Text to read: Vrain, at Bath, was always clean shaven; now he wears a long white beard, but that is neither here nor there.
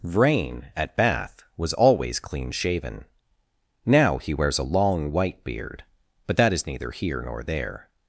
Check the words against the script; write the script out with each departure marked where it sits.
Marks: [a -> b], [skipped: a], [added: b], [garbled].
Vrain, at Bath, was always clean shaven; now he wears a long white beard, but that is neither here nor there.